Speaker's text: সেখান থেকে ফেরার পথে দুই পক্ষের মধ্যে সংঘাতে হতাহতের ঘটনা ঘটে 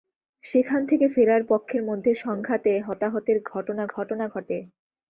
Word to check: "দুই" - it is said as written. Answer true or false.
false